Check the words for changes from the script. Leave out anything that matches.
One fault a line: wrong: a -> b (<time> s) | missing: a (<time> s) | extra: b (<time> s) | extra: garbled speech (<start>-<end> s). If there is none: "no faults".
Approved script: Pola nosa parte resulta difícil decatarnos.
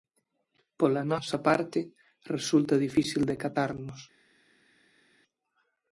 no faults